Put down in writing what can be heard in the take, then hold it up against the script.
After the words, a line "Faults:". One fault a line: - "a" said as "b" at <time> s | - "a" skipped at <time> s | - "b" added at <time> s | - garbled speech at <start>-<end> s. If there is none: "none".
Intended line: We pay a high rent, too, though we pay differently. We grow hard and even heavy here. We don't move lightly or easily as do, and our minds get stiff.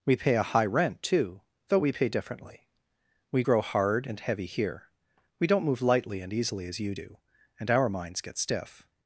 We pay a high rent, too, though we pay differently. We grow hard and heavy here. We don't move lightly and easily as you do, and our minds get stiff.
Faults:
- "even" skipped at 4.2 s
- "or" said as "and" at 6.2 s
- "you" added at 6.8 s